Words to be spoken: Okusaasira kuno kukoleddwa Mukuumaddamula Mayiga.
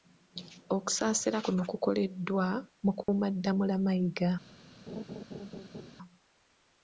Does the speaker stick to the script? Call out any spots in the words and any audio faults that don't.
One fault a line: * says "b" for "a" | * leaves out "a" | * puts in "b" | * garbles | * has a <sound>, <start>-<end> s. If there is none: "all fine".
* has a dropout, 3.0-3.1 s
* has a laugh, 4.9-5.9 s